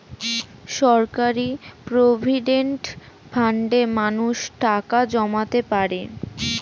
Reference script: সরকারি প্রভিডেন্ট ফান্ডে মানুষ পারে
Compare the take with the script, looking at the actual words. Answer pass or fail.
fail